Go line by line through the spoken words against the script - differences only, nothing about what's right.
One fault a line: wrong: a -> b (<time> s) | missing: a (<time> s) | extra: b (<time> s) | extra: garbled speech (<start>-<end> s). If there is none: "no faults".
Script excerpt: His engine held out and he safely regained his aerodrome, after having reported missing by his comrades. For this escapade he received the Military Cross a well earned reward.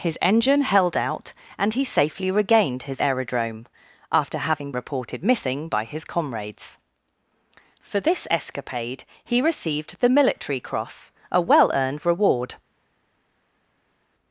no faults